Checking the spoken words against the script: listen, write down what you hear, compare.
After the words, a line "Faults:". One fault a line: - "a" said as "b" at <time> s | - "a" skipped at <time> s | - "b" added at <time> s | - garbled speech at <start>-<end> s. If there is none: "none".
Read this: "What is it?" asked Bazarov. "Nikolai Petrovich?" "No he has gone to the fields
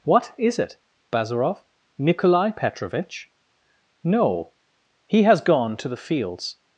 "What is it?" Bazarov. "Nikolai Petrovich?" "No he has gone to the fields
Faults:
- "asked" skipped at 0.8 s